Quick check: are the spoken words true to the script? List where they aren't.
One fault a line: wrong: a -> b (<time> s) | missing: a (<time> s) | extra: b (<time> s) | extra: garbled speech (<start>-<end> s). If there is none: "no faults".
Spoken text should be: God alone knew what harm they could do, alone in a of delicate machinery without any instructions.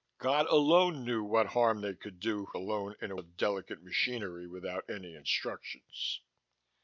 no faults